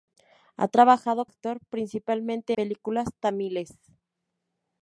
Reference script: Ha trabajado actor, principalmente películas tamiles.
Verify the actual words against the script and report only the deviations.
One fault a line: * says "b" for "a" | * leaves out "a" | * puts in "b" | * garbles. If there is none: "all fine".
all fine